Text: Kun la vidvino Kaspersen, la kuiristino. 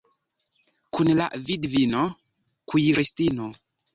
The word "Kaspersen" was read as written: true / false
false